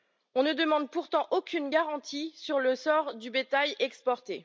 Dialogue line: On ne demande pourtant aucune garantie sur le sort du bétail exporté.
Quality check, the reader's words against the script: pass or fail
pass